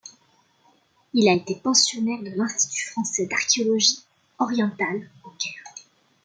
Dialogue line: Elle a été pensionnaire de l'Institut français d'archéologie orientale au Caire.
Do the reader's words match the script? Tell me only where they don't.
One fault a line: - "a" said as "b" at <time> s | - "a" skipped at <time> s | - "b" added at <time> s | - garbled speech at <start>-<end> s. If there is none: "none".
- "Elle" said as "Il" at 1.1 s